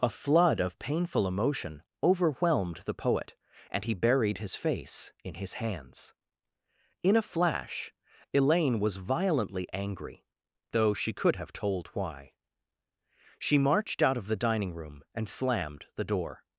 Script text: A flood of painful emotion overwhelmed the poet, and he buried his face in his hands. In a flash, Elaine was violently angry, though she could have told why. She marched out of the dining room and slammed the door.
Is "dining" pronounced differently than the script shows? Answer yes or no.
no